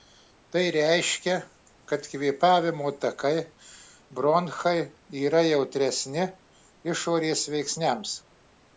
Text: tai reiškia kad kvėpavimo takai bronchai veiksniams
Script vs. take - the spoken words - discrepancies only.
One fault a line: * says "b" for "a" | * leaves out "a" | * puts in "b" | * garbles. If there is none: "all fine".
* puts in "yra jautresni išorės"